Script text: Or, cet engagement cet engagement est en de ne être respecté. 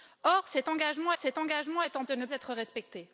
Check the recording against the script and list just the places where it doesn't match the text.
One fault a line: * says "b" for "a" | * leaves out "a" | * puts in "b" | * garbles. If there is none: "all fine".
all fine